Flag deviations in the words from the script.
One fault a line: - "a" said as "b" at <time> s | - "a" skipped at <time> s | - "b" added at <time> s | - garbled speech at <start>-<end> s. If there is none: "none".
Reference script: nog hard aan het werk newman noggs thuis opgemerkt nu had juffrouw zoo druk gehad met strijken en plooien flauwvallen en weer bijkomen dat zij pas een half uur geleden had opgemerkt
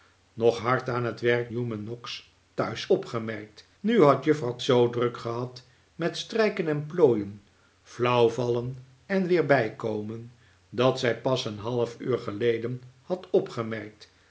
none